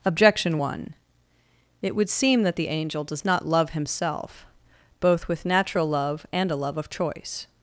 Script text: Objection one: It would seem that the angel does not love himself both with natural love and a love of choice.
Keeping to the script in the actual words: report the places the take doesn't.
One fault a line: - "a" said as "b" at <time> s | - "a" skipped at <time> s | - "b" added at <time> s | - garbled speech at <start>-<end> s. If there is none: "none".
none